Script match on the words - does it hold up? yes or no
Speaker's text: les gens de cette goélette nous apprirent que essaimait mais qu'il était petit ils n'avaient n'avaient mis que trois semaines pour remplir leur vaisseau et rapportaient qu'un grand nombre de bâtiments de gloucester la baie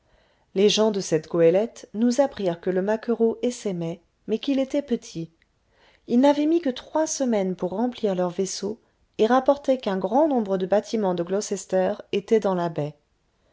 no